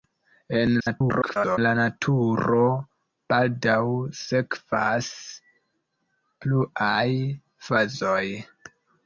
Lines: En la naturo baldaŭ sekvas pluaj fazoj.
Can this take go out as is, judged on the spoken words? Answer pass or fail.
fail